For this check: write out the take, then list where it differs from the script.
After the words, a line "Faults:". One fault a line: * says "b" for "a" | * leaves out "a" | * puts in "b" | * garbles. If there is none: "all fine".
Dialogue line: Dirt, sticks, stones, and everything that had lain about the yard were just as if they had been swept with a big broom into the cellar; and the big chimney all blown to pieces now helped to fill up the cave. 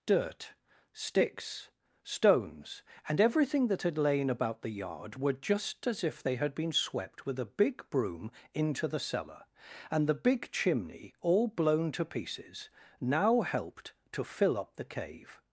Dirt, sticks, stones, and everything that had lain about the yard were just as if they had been swept with a big broom into the cellar; and the big chimney all blown to pieces now helped to fill up the cave.
Faults:
all fine